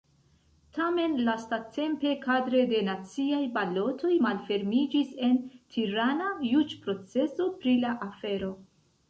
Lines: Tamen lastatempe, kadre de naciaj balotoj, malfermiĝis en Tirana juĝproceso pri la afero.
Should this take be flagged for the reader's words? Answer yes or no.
no